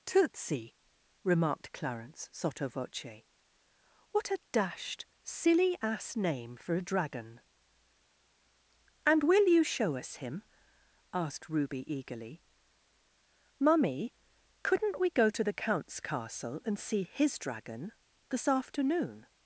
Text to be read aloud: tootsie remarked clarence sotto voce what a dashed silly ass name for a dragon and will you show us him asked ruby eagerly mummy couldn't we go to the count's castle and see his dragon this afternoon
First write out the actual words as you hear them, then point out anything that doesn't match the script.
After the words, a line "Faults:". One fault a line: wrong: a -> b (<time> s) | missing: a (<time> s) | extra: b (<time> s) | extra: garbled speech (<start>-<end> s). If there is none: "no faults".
tootsie remarked clarence sotto voce what a dashed silly ass name for a dragon and will you show us him asked ruby eagerly mummy couldn't we go to the count's castle and see his dragon this afternoon
Faults:
no faults